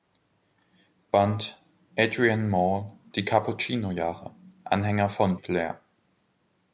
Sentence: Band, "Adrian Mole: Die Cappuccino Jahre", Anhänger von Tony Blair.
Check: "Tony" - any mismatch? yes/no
yes